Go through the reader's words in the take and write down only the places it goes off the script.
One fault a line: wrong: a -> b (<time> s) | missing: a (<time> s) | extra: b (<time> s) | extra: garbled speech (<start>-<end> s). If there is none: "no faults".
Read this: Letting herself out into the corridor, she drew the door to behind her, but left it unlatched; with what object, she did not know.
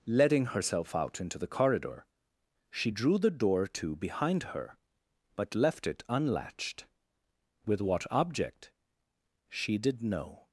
missing: not (10.0 s)